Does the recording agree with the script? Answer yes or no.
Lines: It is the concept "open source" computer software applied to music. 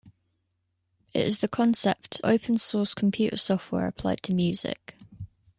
yes